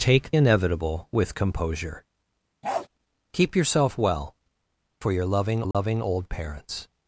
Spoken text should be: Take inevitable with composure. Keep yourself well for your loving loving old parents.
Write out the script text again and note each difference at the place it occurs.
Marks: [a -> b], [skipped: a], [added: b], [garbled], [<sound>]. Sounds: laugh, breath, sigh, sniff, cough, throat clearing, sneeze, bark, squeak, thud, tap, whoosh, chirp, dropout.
Take inevitable with composure. [bark] Keep yourself well for your loving loving [dropout] old parents.